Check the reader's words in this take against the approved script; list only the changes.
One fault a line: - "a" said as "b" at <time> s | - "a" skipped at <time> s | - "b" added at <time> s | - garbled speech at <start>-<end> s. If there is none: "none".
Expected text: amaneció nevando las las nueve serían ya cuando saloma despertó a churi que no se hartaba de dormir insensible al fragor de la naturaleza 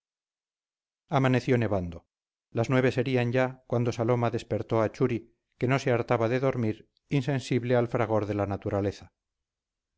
- "las" skipped at 2.7 s